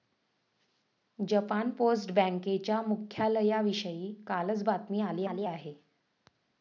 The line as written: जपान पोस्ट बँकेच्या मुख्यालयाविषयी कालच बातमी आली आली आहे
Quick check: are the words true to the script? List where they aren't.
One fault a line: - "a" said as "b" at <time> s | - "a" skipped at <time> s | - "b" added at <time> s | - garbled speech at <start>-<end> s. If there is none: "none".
none